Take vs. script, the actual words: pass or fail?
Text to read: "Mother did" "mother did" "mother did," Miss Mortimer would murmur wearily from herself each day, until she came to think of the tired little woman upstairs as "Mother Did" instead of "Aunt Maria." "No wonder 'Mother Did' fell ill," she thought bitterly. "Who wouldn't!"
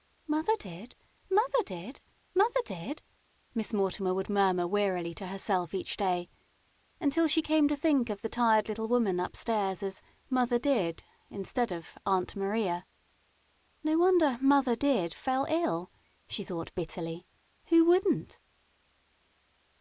fail